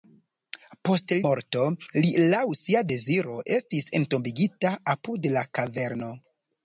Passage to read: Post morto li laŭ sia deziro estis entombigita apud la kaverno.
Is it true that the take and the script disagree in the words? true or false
false